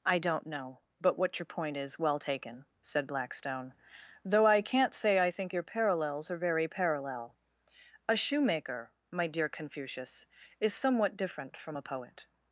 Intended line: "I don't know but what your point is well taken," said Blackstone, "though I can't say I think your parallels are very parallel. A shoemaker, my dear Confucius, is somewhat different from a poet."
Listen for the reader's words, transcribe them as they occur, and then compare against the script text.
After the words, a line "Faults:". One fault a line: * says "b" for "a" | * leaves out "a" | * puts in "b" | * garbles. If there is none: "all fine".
"I don't know but what your point is well taken," said Blackstone, "though I can't say I think your parallels are very parallel. A shoemaker, my dear Confucius, is somewhat different from a poet."
Faults:
all fine